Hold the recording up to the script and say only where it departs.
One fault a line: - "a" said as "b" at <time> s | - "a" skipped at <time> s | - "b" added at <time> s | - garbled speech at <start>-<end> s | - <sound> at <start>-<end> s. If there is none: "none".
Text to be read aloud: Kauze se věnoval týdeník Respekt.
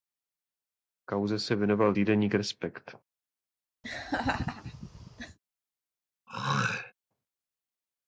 - laugh at 3.8-5.4 s
- throat clearing at 6.3-6.9 s